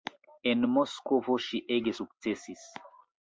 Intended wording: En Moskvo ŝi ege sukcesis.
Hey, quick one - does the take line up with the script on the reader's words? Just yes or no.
yes